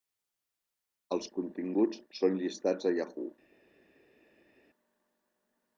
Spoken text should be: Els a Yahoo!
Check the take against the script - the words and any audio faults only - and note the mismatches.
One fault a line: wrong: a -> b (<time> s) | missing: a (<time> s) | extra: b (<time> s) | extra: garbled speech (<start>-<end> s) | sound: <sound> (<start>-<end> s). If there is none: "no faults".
extra: continguts són llistats (1.4 s)